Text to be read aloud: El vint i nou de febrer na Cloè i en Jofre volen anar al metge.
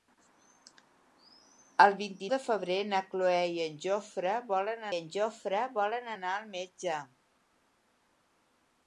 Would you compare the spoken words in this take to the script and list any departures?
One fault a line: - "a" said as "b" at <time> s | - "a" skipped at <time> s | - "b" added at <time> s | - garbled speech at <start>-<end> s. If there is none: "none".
- "nou" skipped at 2.3 s
- "en Jofre volen" added at 5.0 s